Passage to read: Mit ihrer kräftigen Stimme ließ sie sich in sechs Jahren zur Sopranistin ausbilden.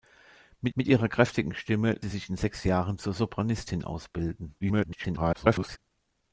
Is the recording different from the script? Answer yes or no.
yes